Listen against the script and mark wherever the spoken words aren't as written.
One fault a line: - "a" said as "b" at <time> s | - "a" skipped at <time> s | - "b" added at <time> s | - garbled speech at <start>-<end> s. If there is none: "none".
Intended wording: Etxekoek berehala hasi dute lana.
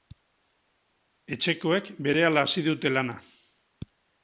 none